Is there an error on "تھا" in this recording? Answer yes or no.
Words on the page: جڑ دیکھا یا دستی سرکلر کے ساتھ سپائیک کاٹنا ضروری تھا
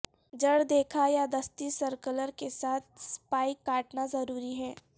yes